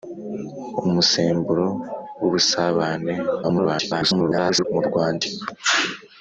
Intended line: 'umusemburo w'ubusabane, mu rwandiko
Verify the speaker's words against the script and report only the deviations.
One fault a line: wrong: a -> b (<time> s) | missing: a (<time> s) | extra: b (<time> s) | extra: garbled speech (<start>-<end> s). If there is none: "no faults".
extra: garbled speech (3.4-4.6 s)